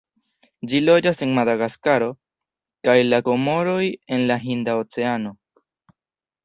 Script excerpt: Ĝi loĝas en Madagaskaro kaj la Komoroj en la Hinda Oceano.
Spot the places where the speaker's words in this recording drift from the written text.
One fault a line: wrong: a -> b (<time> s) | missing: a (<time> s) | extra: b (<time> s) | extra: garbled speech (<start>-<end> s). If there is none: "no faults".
no faults